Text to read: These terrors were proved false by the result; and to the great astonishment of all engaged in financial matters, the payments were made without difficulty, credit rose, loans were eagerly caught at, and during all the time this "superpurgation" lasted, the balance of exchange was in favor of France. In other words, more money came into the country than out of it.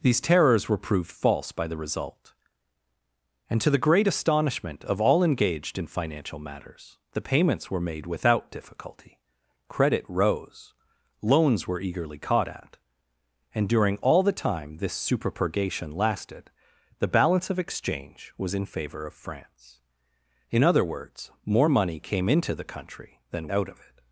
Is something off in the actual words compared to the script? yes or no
no